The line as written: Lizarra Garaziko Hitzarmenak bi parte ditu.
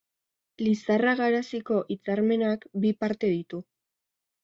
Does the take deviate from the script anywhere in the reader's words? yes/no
no